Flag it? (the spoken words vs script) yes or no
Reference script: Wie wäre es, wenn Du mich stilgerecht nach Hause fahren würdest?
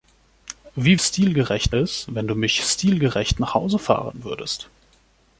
yes